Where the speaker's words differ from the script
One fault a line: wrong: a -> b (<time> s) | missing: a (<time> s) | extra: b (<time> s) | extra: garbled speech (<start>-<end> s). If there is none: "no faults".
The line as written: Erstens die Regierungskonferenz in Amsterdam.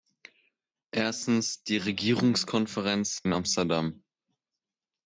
no faults